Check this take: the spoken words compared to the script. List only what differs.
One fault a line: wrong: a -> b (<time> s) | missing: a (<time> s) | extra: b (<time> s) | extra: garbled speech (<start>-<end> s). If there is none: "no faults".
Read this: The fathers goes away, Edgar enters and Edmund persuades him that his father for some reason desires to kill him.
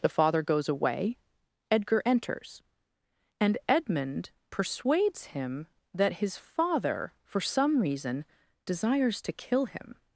wrong: fathers -> father (0.1 s)